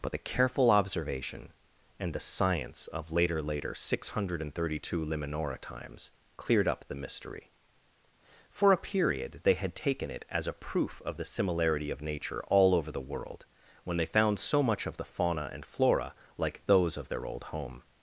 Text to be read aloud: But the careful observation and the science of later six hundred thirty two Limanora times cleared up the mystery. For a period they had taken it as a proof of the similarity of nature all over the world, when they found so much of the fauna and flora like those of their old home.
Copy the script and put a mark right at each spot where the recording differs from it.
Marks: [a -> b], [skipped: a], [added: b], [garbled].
But the careful observation and the science of later [added: later] six hundred thirty two Limanora times cleared up the mystery. For a period they had taken it as a proof of the similarity of nature all over the world, when they found so much of the fauna and flora like those of their old home.